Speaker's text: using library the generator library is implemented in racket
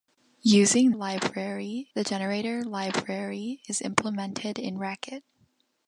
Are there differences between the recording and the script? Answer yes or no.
no